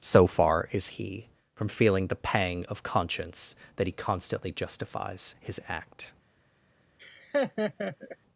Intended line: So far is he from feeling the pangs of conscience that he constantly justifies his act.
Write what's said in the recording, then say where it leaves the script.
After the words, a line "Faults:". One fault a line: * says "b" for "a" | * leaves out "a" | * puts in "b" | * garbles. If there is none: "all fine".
So far is he from feeling the pang of conscience that he constantly justifies his act.
Faults:
* says "pang" for "pangs"